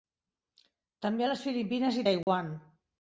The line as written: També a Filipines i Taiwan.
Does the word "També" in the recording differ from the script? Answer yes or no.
no